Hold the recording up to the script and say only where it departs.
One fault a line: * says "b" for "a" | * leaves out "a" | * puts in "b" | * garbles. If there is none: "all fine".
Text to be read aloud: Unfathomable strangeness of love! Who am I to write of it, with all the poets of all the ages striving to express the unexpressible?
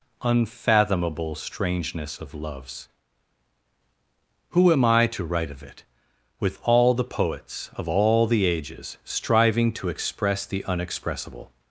* says "loves" for "love"